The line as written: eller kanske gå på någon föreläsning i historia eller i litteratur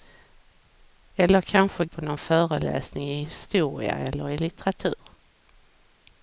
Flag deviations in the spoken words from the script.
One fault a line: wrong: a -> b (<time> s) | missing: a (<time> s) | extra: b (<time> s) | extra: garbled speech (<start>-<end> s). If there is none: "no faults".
missing: gå (1.9 s)